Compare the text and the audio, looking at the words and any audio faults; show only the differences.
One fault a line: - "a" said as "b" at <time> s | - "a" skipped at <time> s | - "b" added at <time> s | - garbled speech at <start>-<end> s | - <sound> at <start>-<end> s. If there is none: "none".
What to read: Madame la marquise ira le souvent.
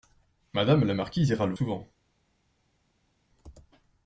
none